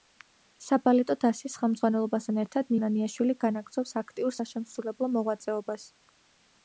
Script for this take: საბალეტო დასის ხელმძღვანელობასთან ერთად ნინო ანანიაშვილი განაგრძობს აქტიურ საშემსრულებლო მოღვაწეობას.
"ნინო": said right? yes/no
no